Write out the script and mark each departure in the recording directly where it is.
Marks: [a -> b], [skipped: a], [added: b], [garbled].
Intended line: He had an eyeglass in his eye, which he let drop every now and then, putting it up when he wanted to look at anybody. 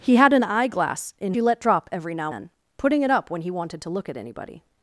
He had an eyeglass in [skipped: his eye, which] he let drop every now [skipped: and] then, putting it up when he wanted to look at anybody.